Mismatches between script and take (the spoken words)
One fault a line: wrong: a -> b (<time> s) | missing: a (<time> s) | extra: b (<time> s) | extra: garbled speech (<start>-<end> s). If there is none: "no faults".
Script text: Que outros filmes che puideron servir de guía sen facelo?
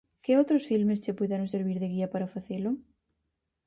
wrong: sen -> para (2.1 s)